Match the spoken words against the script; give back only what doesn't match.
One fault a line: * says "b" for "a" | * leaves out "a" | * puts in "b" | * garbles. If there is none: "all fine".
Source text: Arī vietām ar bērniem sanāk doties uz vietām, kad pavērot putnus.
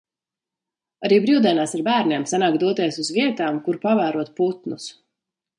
* says "brīvdienās" for "vietām"
* says "kur" for "kad"